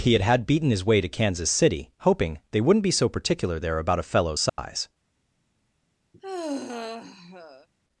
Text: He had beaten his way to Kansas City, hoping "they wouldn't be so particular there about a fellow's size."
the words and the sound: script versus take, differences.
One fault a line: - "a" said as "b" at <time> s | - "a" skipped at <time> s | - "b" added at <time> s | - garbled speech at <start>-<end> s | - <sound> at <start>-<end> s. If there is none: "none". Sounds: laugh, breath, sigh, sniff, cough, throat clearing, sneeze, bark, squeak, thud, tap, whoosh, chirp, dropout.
- "had" added at 0.2 s
- dropout at 4.5-4.6 s
- sigh at 6.1-7.7 s